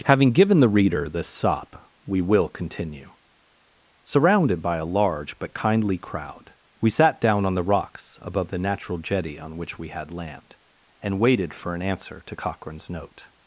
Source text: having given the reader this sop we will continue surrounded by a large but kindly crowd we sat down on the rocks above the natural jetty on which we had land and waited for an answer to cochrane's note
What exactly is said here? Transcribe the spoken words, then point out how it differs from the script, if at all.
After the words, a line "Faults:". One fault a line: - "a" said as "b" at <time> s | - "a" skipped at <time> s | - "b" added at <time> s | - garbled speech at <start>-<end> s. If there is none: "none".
having given the reader this sop we will continue surrounded by a large but kindly crowd we sat down on the rocks above the natural jetty on which we had land and waited for an answer to cochrane's note
Faults:
none